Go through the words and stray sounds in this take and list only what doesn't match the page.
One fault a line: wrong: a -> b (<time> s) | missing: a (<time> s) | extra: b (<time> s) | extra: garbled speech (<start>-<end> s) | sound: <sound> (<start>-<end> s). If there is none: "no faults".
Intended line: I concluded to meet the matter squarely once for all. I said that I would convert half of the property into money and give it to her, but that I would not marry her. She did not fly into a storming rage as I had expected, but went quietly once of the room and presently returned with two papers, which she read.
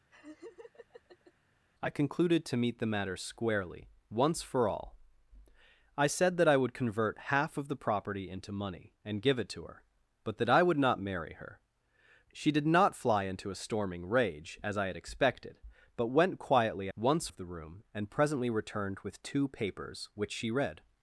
sound: laugh (0.1-1.3 s)